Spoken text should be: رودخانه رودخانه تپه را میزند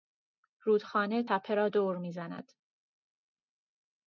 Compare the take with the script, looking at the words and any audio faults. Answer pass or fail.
fail